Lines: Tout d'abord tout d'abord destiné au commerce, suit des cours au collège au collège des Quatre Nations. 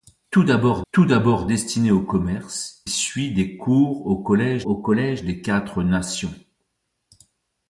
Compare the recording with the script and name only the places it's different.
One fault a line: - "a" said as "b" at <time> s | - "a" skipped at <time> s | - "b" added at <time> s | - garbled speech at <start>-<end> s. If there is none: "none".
none